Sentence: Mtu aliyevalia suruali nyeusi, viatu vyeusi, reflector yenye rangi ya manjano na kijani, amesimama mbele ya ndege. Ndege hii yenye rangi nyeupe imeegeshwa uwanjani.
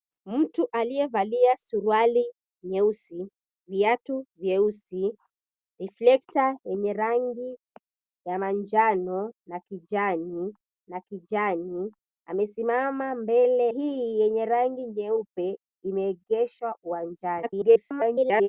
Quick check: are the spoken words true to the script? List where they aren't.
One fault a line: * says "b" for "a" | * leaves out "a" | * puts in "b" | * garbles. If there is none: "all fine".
* puts in "na kijani"
* leaves out "ya ndege Ndege"
* garbles